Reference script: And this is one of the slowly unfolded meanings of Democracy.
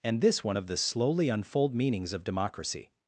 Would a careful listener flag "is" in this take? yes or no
yes